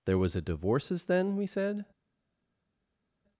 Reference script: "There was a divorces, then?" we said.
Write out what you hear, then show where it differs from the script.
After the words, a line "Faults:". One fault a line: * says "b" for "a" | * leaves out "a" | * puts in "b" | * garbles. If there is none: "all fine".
"There was a divorces, then?" we said.
Faults:
all fine